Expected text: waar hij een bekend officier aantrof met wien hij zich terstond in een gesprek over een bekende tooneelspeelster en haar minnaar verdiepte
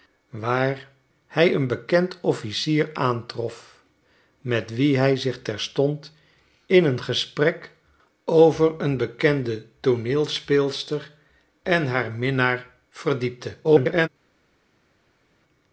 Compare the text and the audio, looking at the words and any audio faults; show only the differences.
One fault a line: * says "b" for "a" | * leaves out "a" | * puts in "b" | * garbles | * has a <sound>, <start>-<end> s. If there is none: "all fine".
* garbles